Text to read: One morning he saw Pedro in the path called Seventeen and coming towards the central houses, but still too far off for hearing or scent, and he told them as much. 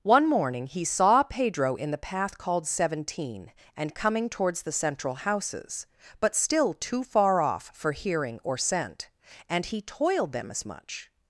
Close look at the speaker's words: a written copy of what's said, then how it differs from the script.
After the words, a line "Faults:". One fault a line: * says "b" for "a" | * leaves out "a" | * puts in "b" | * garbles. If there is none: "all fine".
One morning he saw Pedro in the path called Seventeen and coming towards the central houses, but still too far off for hearing or scent, and he toiled them as much.
Faults:
* says "toiled" for "told"